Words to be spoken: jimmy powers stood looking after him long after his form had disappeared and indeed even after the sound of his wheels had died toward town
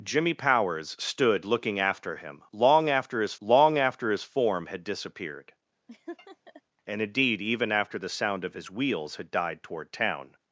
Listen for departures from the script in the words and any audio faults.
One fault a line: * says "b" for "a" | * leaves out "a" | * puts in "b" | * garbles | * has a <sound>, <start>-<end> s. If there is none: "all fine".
* puts in "long after his"
* has a laugh, 5.9-6.6 s